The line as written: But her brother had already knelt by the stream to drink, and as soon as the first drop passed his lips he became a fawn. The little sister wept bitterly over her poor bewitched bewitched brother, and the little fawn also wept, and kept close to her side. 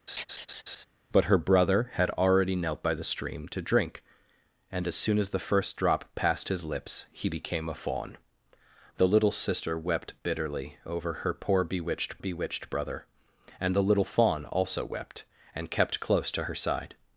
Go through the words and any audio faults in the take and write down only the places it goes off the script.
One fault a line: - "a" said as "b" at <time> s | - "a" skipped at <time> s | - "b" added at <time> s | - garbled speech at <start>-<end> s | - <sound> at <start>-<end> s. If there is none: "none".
- laugh at 0.1-0.9 s